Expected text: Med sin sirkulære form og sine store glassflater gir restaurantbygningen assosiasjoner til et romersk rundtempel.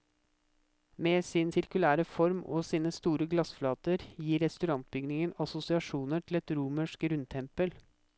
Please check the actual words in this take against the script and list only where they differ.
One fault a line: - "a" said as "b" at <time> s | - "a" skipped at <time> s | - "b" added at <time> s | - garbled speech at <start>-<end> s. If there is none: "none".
none